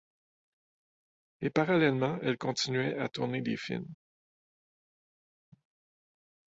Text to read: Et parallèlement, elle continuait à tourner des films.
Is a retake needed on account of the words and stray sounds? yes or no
no